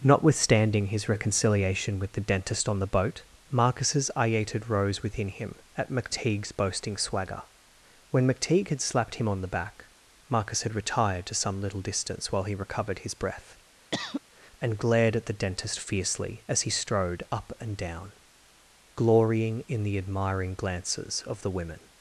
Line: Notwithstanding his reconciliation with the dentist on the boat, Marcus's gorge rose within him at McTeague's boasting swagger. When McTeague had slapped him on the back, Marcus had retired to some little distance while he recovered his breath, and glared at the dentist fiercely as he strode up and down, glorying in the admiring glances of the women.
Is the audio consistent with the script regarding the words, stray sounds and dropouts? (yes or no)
no